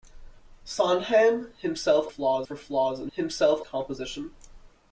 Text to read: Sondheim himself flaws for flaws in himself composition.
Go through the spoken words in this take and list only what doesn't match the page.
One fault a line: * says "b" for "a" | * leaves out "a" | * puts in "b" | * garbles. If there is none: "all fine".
all fine